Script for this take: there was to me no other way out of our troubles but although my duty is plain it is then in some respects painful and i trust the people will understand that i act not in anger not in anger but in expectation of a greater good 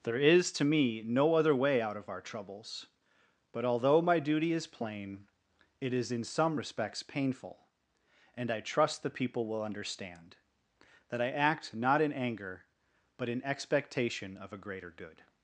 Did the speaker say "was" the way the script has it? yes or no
no